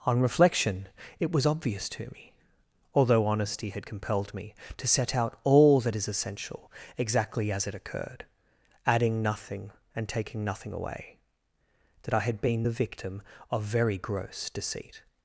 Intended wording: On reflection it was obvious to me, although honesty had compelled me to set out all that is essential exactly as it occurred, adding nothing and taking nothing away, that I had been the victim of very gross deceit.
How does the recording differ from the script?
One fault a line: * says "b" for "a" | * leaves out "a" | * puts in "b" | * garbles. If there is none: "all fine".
all fine